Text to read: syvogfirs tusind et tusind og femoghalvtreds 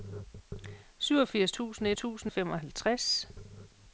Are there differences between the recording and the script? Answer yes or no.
no